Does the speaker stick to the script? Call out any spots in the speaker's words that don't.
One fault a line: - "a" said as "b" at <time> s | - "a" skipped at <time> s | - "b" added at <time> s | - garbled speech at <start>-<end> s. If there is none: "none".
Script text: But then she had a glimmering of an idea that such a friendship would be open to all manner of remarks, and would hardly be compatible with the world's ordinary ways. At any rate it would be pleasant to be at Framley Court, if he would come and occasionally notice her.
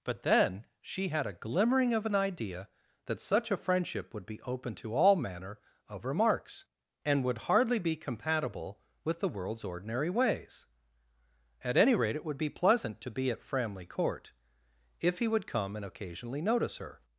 none